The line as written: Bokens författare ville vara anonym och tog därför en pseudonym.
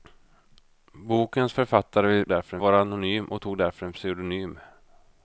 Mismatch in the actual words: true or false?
true